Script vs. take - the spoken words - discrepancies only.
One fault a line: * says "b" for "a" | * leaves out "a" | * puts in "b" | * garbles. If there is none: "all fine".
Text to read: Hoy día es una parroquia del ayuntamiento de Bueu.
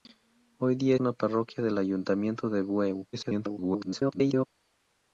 * leaves out "es"
* garbles